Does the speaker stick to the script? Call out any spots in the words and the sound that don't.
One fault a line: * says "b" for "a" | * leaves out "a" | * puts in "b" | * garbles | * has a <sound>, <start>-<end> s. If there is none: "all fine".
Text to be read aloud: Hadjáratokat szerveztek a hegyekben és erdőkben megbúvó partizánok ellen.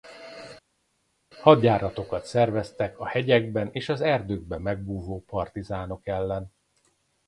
* puts in "az"